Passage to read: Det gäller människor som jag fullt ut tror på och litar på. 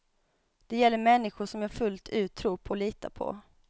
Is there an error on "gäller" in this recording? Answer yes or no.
no